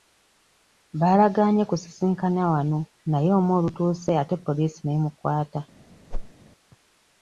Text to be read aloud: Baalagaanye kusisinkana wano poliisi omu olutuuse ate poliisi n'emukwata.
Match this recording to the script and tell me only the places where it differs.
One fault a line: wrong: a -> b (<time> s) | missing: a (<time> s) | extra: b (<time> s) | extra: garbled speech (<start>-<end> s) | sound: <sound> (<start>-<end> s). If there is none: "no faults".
wrong: poliisi -> naye (3.1 s)
sound: whoosh (6.1-6.3 s)